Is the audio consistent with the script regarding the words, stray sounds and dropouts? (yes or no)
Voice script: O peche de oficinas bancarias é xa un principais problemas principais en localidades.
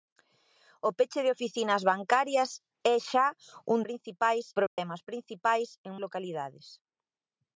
no